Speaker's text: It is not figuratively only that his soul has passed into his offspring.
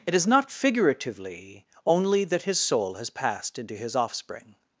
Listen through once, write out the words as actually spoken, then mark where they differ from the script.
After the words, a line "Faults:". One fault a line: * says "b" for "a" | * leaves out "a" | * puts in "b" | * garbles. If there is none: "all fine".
It is not figuratively only that his soul has passed into his offspring.
Faults:
all fine